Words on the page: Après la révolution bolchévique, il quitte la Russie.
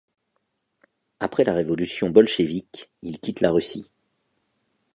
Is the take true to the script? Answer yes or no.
yes